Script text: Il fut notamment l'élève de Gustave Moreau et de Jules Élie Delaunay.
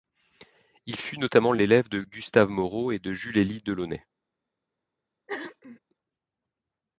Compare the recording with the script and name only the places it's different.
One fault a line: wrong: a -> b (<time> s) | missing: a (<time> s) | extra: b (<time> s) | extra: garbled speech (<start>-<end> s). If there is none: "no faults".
no faults